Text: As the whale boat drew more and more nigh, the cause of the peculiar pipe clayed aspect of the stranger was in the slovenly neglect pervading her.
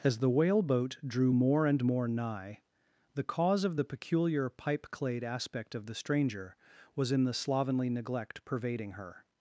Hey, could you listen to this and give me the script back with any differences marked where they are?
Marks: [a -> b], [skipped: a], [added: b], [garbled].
As the whale boat drew more and more nigh, the cause of the peculiar pipe clayed aspect of the stranger was in the slovenly neglect pervading her.